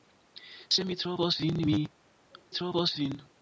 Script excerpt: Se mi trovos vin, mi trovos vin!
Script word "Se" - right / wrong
right